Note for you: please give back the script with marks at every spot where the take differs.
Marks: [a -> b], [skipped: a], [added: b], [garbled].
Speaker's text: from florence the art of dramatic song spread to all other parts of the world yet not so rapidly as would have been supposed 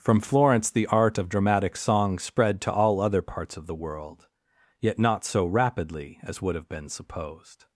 from florence the art of dramatic song spread to all other parts of the world yet not so rapidly as would have been supposed